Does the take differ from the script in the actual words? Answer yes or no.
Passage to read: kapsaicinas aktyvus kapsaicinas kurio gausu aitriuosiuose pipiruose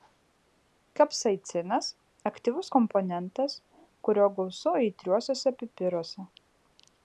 yes